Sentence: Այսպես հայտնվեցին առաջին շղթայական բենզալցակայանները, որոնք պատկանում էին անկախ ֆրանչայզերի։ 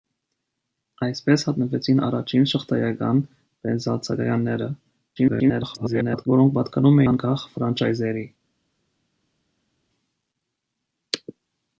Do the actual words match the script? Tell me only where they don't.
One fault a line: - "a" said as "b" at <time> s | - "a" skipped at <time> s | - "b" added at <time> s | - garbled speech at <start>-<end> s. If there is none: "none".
- garbled speech at 5.2-6.3 s
- "էին" skipped at 7.0 s